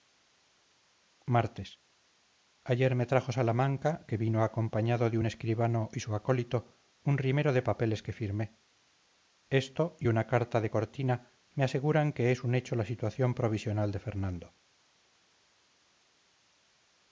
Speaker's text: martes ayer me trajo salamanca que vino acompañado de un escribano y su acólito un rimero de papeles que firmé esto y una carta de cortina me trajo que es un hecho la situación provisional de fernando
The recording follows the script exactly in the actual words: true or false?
false